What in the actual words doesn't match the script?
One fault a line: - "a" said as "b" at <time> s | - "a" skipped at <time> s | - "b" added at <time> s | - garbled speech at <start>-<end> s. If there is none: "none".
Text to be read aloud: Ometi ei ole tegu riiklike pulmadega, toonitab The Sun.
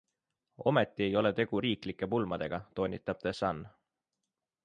none